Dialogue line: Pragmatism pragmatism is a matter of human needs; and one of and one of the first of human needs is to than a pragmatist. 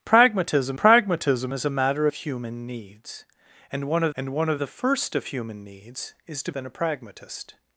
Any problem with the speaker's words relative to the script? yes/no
no